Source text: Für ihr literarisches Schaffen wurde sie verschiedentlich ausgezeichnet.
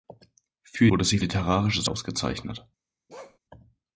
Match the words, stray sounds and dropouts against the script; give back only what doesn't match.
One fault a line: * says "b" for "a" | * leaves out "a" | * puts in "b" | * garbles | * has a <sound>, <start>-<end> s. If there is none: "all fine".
* leaves out "ihr literarisches Schaffen"
* says "literarisches" for "verschiedentlich"
* has a bark, 3.1-3.4 s